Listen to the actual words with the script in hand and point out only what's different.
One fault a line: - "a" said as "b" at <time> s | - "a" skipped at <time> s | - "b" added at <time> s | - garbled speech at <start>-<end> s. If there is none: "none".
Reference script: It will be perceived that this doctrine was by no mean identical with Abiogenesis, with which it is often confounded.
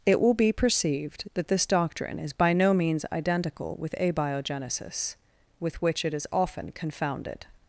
- "was" said as "is" at 2.2 s
- "mean" said as "means" at 2.7 s